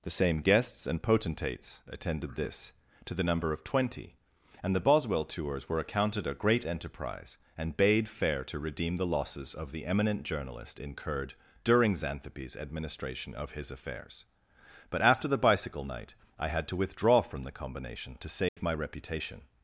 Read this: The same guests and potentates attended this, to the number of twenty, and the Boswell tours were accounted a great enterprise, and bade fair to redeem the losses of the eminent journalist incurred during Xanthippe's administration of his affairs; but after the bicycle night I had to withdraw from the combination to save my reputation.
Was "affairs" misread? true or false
false